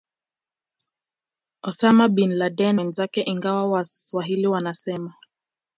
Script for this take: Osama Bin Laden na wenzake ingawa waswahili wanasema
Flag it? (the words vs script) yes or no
yes